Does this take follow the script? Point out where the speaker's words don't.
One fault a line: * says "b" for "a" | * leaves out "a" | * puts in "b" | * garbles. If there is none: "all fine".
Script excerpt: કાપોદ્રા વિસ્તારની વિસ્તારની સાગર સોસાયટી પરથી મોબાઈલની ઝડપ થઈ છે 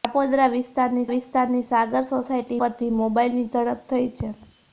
all fine